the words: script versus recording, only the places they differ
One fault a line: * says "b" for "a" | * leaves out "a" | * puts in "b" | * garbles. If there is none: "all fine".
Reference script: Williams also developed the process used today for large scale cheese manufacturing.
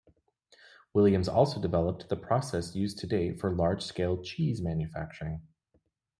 all fine